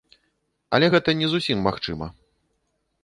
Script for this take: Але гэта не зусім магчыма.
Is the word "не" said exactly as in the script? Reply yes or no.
yes